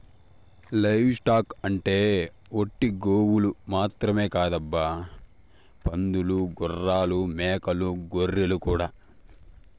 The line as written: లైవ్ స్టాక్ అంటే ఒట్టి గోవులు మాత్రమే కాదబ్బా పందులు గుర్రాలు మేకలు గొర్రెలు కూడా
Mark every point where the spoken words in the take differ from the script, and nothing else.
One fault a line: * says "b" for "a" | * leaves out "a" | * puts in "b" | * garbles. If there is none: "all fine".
all fine